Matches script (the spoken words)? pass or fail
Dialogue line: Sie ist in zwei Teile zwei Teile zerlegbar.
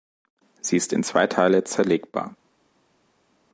fail